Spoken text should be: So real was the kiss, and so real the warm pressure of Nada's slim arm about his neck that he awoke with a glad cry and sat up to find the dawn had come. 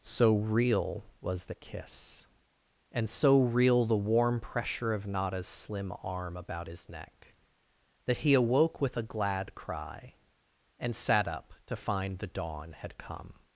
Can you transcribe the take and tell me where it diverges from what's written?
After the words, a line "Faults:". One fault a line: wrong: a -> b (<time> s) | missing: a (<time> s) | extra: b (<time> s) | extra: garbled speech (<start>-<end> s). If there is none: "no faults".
So real was the kiss, and so real the warm pressure of Nada's slim arm about his neck that he awoke with a glad cry and sat up to find the dawn had come.
Faults:
no faults